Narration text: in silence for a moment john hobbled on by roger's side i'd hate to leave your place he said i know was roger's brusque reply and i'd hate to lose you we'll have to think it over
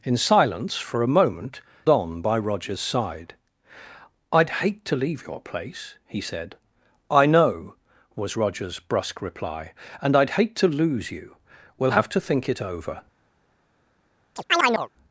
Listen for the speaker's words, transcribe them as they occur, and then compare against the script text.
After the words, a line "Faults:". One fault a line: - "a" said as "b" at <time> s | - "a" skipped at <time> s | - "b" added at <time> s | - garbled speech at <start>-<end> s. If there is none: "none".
in silence for a moment on by roger's side i'd hate to leave your place he said i know was roger's brusque reply and i'd hate to lose you we'll have to think it over
Faults:
- "john hobbled" skipped at 1.6 s